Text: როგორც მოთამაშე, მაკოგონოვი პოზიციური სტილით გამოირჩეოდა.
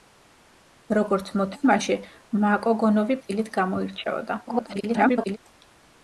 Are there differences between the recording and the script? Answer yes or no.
yes